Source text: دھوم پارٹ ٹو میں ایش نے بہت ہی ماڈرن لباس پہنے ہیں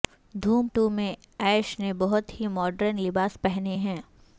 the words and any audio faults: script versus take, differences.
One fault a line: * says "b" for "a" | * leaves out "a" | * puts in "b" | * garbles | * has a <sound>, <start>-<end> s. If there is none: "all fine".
* leaves out "پارٹ"